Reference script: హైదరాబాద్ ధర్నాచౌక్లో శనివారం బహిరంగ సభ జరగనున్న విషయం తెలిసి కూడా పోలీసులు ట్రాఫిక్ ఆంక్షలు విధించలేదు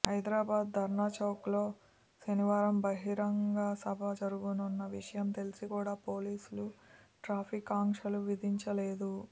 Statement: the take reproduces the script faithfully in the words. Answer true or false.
true